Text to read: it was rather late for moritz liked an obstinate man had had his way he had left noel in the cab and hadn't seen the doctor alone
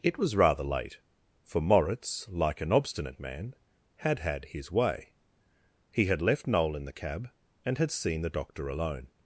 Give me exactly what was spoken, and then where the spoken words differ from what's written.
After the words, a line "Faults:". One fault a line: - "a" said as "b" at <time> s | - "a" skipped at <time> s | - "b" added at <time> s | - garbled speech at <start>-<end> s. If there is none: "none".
it was rather late for moritz like an obstinate man had had his way he had left noel in the cab and had seen the doctor alone
Faults:
- "liked" said as "like" at 2.3 s
- "hadn't" said as "had" at 7.8 s